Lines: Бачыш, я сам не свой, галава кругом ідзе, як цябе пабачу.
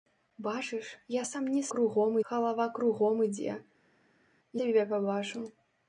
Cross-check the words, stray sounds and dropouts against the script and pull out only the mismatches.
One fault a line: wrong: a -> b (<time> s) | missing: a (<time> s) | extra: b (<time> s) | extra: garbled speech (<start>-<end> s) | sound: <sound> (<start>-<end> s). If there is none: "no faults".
wrong: свой -> кругом (1.7 s)
missing: як (3.6 s)